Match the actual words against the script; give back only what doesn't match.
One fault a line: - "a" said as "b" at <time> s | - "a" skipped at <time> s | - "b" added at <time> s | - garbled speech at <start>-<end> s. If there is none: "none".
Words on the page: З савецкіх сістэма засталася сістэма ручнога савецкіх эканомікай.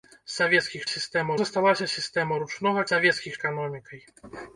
none